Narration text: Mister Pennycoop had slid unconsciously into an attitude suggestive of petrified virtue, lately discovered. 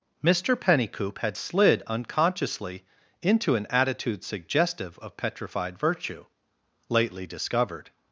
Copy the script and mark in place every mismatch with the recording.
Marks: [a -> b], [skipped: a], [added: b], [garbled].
Mister Pennycoop had slid unconsciously into an attitude suggestive of petrified virtue, lately discovered.